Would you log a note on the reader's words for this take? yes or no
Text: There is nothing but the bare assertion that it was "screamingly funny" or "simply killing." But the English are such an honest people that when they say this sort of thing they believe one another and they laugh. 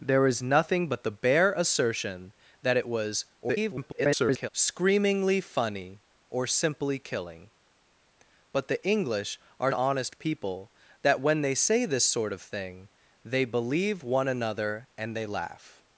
yes